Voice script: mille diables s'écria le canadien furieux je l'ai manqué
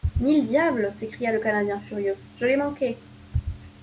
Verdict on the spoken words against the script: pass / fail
pass